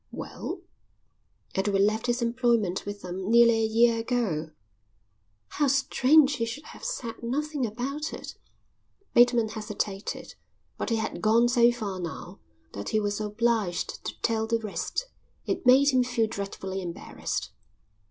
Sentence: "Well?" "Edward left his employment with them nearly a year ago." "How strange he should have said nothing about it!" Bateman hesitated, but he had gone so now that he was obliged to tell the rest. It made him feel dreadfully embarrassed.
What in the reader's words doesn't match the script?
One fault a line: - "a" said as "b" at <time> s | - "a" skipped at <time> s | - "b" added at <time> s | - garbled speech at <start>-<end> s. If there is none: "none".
- "far" added at 11.7 s